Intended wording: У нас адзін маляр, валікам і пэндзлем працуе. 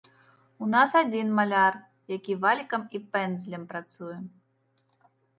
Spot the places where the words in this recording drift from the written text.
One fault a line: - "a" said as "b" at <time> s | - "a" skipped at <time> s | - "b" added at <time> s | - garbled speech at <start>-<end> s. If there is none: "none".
- "які" added at 2.1 s